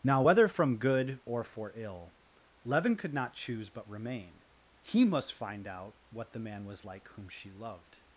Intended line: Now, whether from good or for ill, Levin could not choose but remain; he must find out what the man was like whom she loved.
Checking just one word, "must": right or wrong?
right